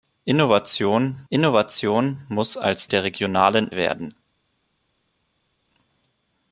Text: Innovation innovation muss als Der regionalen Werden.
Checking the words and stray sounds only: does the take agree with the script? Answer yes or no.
yes